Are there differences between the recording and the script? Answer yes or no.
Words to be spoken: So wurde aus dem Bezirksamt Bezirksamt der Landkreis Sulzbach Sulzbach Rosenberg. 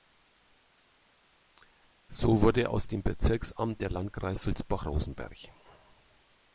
yes